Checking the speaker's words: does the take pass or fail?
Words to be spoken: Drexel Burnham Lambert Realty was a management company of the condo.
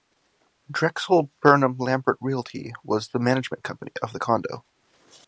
fail